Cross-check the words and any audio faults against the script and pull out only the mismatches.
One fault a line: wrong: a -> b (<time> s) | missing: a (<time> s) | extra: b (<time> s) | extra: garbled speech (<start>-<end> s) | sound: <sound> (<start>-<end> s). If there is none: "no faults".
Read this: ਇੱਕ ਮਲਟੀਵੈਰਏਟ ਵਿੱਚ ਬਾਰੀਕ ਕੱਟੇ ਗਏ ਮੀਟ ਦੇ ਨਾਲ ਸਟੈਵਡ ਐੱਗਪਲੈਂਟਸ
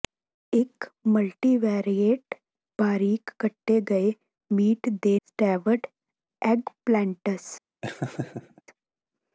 missing: ਵਿੱਚ (2.4 s)
missing: ਨਾਲ (5.2 s)
sound: laugh (7.8-8.6 s)